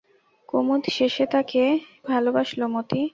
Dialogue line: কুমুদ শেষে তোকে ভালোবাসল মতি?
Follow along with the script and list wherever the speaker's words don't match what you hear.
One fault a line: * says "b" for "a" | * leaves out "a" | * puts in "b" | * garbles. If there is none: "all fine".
* leaves out "তোকে"